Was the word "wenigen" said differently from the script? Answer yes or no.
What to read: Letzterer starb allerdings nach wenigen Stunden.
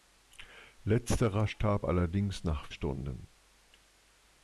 yes